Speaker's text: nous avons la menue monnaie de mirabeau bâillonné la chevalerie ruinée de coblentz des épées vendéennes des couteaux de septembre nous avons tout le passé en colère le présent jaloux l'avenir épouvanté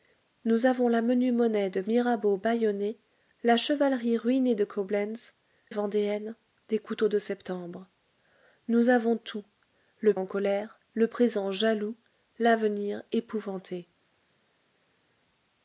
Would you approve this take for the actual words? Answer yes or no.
no